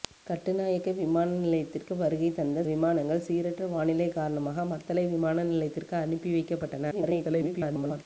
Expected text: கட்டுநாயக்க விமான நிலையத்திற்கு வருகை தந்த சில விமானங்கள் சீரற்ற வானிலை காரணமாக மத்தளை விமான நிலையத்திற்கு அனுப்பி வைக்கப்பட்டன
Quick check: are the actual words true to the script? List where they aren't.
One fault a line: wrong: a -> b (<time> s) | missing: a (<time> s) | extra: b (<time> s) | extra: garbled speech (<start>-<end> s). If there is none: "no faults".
missing: சில (2.6 s)
extra: garbled speech (6.9-8.1 s)